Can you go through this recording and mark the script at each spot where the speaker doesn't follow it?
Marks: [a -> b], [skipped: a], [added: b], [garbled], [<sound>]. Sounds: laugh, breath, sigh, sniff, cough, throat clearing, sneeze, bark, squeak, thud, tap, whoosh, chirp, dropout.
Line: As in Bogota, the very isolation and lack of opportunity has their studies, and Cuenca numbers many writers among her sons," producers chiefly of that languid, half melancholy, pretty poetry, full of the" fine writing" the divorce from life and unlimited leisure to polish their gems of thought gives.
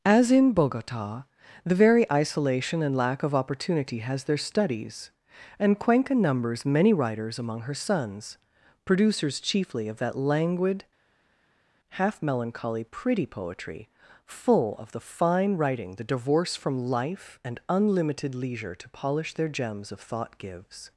As in Bogota, the very isolation and lack of opportunity has their studies, and Cuenca numbers many writers among her sons," producers chiefly of that languid, half melancholy, pretty poetry, full of the" fine writing" the divorce from life and unlimited leisure to polish their gems of thought gives.